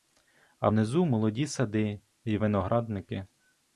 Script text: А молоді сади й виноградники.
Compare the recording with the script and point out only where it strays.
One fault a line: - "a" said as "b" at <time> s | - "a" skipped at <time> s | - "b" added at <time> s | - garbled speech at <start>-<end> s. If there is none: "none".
- "внизу" added at 0.7 s